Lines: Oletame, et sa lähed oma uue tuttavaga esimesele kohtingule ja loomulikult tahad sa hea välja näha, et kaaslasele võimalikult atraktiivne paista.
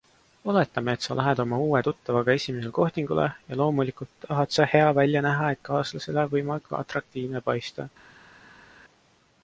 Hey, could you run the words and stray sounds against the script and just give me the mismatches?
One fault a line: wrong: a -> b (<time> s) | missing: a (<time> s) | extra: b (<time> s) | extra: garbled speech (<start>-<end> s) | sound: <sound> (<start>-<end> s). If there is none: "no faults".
no faults